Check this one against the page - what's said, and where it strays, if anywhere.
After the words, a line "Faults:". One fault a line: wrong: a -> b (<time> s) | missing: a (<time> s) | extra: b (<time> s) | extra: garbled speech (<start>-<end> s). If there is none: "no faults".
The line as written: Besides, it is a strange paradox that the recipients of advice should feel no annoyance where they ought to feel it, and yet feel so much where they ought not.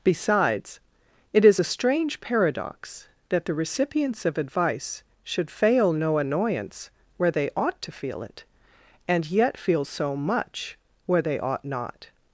Besides, it is a strange paradox that the recipients of advice should fail no annoyance where they ought to feel it, and yet feel so much where they ought not.
Faults:
wrong: feel -> fail (5.5 s)